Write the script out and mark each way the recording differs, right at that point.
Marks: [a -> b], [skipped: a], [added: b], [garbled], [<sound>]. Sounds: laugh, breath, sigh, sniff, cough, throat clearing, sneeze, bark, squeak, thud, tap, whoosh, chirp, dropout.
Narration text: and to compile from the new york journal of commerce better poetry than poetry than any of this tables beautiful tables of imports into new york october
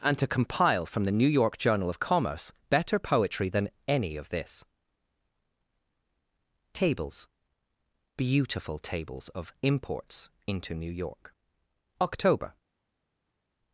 and to compile from the new york journal of commerce better poetry than [skipped: poetry than] any of this tables beautiful tables of imports into new york october